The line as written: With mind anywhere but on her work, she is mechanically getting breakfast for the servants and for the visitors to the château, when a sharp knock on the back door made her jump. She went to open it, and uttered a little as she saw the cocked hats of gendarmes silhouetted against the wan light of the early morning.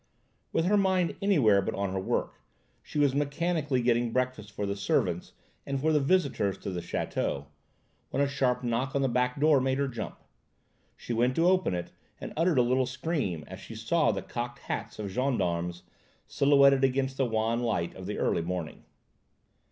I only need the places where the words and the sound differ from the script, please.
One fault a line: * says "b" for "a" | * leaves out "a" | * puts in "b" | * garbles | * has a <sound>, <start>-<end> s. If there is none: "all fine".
* puts in "her"
* says "was" for "is"
* puts in "scream"